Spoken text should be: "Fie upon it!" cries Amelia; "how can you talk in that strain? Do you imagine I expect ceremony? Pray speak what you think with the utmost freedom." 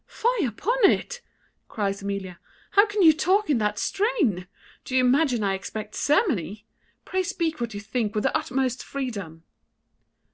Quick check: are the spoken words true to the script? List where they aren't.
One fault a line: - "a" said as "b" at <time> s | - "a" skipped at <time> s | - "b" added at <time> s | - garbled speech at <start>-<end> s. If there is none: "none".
none